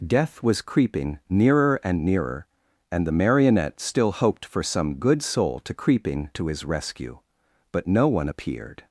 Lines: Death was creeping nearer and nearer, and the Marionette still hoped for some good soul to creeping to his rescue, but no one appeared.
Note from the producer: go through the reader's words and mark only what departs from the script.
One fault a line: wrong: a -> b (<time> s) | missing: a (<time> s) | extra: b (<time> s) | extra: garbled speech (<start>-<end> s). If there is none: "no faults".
no faults